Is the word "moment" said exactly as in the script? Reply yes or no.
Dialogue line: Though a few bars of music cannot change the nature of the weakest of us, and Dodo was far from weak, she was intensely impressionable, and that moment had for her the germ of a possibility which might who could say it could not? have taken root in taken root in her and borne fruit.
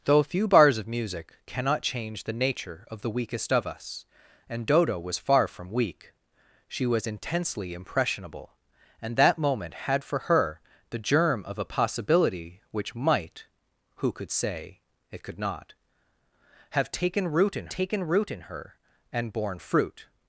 yes